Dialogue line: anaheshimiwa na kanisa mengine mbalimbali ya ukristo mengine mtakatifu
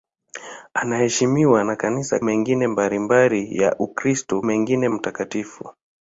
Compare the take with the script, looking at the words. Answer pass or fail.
pass